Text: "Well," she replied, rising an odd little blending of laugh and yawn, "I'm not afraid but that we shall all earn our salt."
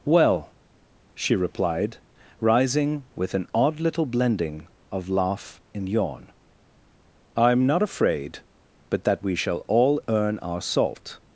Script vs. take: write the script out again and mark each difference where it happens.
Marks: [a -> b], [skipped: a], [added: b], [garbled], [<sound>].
"Well," she replied, rising [added: with] an odd little blending of laugh and yawn, "I'm not afraid but that we shall all earn our salt."